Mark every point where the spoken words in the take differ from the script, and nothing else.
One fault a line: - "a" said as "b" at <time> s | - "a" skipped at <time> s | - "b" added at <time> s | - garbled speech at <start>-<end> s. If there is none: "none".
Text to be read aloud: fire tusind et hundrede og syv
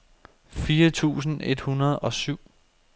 none